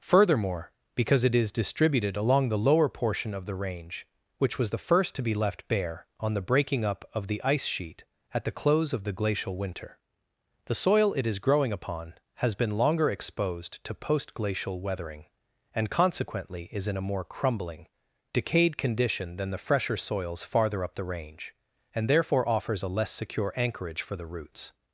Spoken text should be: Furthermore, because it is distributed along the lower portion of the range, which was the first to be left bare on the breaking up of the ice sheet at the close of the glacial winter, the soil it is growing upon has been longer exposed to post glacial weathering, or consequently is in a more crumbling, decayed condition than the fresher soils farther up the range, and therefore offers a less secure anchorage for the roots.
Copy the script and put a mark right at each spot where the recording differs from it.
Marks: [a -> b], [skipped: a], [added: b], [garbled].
Furthermore, because it is distributed along the lower portion of the range, which was the first to be left bare on the breaking up of the ice sheet at the close of the glacial winter, the soil it is growing upon has been longer exposed to post glacial weathering, [or -> and] consequently is in a more crumbling, decayed condition than the fresher soils farther up the range, and therefore offers a less secure anchorage for the roots.